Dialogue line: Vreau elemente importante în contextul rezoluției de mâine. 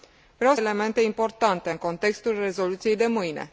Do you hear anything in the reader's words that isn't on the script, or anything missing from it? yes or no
no